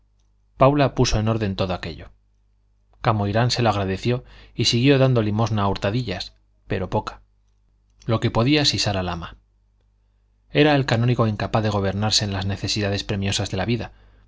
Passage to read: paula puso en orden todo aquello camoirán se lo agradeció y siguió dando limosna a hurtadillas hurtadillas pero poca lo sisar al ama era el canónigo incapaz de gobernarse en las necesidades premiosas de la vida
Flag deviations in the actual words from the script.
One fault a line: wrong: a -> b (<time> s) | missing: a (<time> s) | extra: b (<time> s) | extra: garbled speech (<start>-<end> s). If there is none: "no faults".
missing: hurtadillas (6.3 s)
extra: que podía (8.2 s)